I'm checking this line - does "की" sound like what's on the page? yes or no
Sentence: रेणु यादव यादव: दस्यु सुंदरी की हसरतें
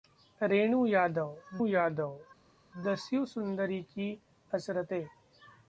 yes